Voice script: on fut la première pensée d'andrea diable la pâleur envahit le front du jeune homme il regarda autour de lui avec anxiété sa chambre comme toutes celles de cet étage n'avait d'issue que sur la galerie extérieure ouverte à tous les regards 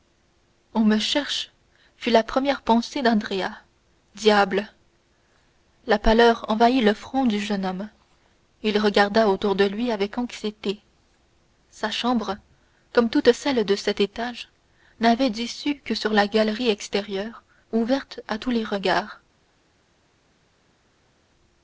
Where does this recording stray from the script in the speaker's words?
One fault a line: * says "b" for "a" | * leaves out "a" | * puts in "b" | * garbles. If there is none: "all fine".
* puts in "me cherche"